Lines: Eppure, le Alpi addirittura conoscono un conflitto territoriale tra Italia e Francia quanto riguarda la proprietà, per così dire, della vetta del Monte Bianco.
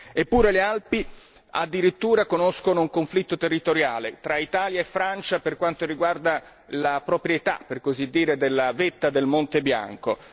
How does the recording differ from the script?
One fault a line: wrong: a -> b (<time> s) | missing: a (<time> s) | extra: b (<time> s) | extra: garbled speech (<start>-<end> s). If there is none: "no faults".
extra: per (5.4 s)